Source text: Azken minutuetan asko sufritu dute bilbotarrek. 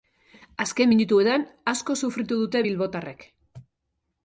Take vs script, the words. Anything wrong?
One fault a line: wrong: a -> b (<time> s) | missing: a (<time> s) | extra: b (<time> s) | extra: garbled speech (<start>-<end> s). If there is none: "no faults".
no faults